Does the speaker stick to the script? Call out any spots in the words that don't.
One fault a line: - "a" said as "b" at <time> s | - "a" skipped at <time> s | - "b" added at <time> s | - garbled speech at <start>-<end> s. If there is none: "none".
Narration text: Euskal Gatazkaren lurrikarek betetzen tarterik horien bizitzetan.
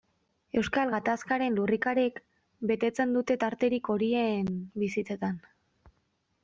- "dute" added at 3.2 s